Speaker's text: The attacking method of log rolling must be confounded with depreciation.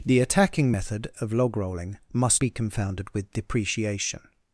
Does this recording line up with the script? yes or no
yes